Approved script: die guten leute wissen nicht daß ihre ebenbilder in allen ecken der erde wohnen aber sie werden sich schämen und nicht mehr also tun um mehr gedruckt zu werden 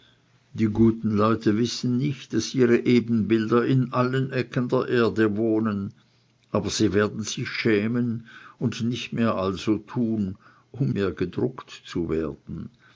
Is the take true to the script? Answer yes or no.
yes